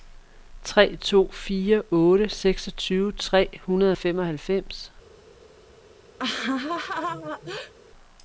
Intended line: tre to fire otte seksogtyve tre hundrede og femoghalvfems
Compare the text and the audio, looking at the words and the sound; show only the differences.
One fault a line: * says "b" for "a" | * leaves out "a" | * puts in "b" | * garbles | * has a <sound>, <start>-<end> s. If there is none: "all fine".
* has a laugh, 6.2-7.7 s